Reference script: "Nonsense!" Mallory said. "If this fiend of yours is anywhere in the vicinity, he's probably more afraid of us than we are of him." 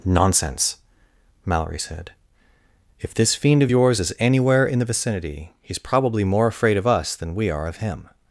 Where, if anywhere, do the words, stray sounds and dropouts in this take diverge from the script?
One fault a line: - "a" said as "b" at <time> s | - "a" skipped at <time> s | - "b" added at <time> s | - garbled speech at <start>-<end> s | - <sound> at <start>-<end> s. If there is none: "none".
none